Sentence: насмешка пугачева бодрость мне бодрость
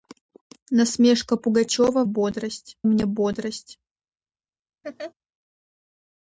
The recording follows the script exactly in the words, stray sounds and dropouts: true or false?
false